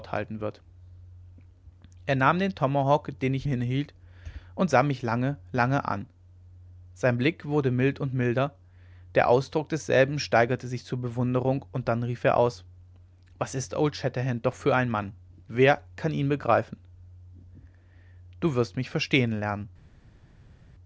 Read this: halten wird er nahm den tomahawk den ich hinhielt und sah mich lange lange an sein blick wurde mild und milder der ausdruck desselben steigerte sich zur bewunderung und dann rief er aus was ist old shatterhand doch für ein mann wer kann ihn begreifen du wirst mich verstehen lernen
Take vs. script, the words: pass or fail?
pass